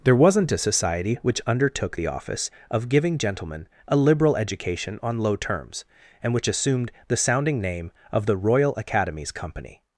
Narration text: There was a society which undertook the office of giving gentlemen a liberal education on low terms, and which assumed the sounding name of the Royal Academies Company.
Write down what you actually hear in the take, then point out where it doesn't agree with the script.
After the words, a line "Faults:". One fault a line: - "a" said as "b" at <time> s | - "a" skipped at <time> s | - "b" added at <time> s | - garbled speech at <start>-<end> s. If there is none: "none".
There wasn't a society which undertook the office of giving gentlemen a liberal education on low terms, and which assumed the sounding name of the Royal Academies Company.
Faults:
- "was" said as "wasn't" at 0.1 s